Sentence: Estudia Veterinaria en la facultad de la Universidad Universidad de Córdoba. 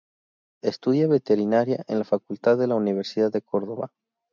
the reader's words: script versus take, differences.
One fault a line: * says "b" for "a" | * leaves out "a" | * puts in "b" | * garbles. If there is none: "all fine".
* leaves out "Universidad"